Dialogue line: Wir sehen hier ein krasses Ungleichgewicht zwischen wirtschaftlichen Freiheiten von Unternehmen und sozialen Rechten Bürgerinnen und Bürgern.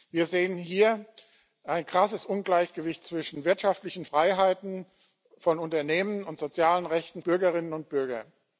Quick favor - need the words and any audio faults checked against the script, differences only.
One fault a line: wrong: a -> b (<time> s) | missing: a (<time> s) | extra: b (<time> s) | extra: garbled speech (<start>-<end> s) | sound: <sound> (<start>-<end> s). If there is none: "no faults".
no faults